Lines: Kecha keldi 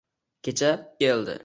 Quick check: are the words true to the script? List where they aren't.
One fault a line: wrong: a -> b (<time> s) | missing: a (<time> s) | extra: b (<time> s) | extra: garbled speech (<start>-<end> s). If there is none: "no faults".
no faults